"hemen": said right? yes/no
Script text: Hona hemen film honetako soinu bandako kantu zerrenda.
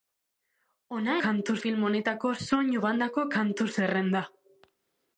no